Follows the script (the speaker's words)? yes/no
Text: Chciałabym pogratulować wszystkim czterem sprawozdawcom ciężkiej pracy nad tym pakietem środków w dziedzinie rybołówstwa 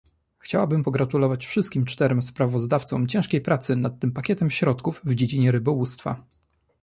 yes